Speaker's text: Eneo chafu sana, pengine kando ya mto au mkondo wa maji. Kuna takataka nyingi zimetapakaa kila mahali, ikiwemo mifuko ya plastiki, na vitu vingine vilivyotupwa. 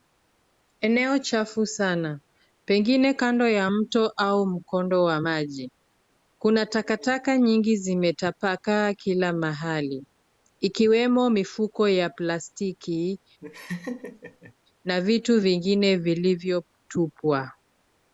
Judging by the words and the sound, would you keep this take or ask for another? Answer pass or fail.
fail